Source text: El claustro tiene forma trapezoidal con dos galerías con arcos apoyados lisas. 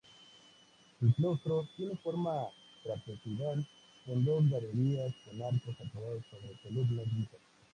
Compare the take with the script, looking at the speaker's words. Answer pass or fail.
fail